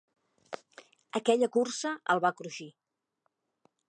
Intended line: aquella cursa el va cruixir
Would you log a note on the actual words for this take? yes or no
no